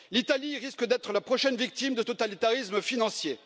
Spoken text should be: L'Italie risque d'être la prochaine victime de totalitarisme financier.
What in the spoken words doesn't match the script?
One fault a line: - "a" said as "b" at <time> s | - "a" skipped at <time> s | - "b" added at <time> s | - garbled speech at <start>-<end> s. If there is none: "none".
none